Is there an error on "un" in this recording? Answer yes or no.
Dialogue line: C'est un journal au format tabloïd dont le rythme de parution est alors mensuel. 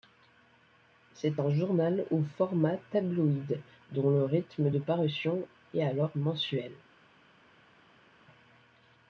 no